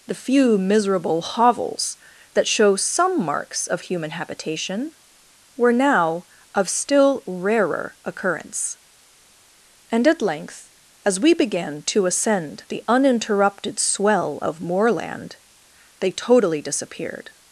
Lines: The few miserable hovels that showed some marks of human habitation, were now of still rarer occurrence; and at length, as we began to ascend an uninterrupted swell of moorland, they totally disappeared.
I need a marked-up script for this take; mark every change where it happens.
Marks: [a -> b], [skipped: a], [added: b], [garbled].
The few miserable hovels that [showed -> show] some marks of human habitation, were now of still rarer occurrence; and at length, as we began to ascend [an -> the] uninterrupted swell of moorland, they totally disappeared.